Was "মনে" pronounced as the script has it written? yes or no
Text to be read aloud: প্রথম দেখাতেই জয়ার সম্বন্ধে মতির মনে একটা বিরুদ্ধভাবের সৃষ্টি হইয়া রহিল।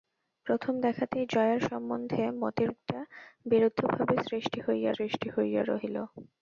no